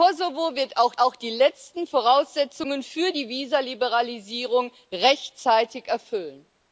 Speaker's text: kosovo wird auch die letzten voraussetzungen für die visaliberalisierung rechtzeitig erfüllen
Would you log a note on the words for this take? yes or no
yes